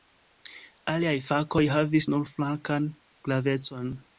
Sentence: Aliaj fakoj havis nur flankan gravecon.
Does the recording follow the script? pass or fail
pass